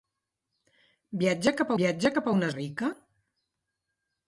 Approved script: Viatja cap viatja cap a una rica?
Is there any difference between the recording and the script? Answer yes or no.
no